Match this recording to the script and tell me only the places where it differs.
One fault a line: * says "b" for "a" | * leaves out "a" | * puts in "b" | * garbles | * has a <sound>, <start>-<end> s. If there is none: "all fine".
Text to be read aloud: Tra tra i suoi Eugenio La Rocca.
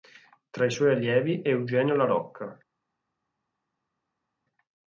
* leaves out "tra"
* puts in "allievi"